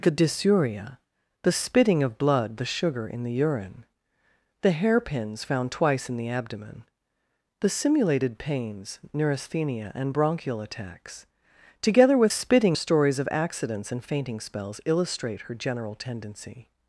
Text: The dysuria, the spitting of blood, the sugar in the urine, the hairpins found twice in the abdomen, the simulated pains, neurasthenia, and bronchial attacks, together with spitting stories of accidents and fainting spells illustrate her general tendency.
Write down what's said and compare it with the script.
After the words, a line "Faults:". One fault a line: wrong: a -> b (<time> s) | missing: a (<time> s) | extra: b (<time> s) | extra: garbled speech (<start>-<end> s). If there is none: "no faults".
The dysuria, the spitting of blood, the sugar in the urine, the hairpins found twice in the abdomen, the simulated pains, neurasthenia, and bronchial attacks, together with spitting stories of accidents and fainting spells illustrate her general tendency.
Faults:
no faults